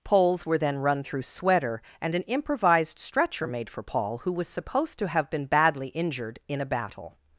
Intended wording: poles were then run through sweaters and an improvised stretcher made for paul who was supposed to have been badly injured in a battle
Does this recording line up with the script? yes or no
no